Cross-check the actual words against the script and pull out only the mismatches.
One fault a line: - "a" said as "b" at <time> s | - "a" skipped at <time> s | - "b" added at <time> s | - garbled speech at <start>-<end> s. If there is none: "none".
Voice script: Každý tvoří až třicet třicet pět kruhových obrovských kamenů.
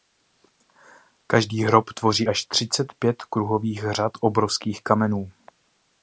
- "hrob" added at 1.6 s
- "třicet" skipped at 2.9 s
- "řad" added at 3.9 s